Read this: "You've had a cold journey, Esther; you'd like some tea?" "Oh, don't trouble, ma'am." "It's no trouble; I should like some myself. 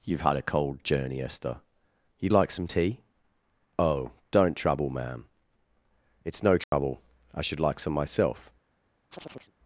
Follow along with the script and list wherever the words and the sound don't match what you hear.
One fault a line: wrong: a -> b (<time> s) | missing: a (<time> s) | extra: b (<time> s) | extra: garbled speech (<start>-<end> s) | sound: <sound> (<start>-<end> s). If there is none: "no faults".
sound: dropout (6.6-6.7 s)
sound: chirp (9.1-9.5 s)